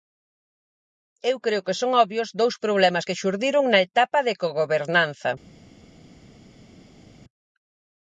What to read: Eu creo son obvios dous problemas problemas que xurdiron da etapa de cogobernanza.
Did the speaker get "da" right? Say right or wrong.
wrong